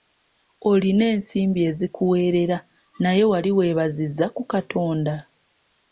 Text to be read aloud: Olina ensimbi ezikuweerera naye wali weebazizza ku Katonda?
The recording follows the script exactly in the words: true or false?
true